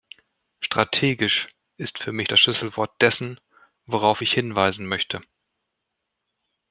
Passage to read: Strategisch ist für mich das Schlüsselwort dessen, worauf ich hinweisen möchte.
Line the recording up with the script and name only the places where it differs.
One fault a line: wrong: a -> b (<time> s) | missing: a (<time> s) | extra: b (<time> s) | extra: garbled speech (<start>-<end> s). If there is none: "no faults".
no faults